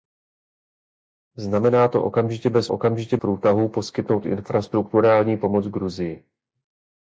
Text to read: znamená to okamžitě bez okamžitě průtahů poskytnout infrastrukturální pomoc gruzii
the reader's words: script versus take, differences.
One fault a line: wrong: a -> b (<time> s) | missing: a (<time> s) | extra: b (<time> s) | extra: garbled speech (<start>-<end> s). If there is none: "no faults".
no faults